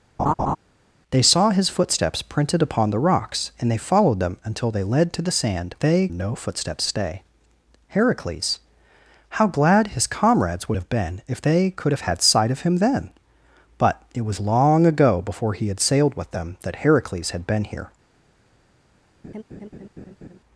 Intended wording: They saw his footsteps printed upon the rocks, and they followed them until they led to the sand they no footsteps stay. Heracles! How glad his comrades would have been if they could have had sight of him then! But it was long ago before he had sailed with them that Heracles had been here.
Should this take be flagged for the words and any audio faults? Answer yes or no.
yes